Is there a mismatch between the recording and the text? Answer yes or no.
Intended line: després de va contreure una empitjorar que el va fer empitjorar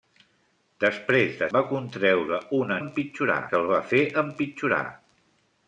no